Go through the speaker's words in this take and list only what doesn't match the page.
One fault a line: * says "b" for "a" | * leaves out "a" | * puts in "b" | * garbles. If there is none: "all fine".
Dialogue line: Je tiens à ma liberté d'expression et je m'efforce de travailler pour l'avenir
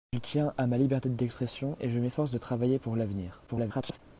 * garbles